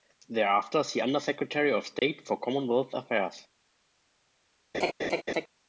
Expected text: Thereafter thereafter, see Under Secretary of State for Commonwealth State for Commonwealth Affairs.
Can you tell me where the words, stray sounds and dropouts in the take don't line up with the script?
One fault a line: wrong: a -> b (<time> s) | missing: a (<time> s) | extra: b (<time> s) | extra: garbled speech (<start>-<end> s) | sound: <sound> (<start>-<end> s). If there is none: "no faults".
missing: thereafter (0.8 s)
sound: dropout (2.0-2.0 s)
missing: State for Commonwealth (2.9 s)
sound: laugh (4.7-5.5 s)